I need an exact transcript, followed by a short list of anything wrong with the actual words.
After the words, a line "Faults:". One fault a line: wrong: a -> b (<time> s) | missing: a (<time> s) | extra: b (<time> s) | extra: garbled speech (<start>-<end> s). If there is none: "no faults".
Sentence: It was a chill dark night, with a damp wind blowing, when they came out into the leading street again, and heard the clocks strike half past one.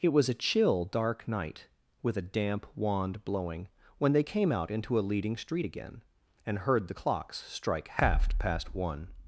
It was a chill dark night, with a damp wand blowing, when they came out into a leading street again, and heard the clocks strike half past one.
Faults:
wrong: wind -> wand (2.7 s)
wrong: the -> a (5.0 s)